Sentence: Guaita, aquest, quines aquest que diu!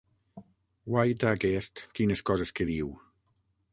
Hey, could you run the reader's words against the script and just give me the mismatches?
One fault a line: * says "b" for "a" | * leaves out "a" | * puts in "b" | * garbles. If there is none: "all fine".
* says "coses" for "aquest"